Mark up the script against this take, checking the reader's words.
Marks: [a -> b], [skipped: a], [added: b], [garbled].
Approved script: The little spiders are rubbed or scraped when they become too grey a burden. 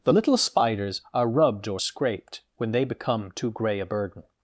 The little spiders are rubbed or scraped when they become too grey a burden.